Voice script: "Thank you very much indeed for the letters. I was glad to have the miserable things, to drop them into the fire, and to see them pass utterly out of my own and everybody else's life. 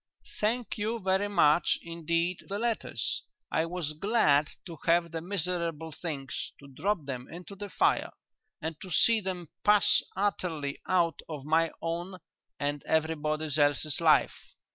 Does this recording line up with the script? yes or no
no